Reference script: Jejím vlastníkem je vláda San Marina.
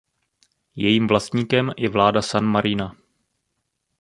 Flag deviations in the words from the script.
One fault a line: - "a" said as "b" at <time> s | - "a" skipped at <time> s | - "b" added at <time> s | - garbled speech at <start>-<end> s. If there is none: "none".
none